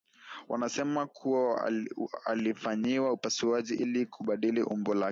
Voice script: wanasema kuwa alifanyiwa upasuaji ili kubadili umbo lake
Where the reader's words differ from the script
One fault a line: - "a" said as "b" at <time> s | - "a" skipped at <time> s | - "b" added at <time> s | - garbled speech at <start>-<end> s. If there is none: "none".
none